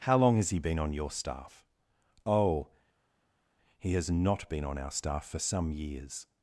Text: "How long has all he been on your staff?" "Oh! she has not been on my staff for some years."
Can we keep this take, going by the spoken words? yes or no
no